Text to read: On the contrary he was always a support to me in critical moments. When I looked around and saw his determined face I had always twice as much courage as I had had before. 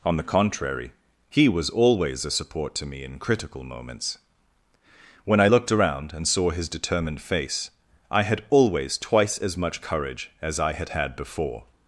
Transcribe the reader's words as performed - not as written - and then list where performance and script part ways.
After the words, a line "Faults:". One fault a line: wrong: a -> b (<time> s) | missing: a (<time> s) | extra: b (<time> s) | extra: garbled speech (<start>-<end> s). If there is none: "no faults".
On the contrary he was always a support to me in critical moments. When I looked around and saw his determined face I had always twice as much courage as I had had before.
Faults:
no faults